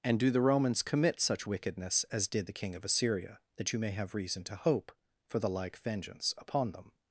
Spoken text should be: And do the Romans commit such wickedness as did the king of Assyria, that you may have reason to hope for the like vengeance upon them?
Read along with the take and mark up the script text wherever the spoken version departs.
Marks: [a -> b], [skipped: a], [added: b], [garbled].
And do the Romans commit such wickedness as did the king of Assyria, that you may have reason to hope for the like vengeance upon them?